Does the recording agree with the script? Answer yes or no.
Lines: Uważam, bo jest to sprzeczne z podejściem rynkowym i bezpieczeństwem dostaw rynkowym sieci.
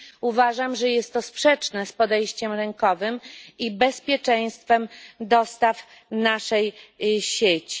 no